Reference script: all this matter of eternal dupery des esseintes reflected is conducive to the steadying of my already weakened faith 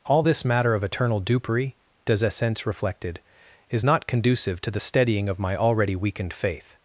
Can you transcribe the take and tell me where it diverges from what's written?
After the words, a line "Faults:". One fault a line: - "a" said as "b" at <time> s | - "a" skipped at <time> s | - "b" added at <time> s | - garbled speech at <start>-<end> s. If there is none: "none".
all this matter of eternal dupery des esseintes reflected is not conducive to the steadying of my already weakened faith
Faults:
- "not" added at 3.8 s